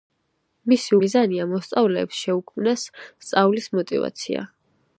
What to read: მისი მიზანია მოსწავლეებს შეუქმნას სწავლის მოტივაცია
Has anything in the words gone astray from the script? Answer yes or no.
no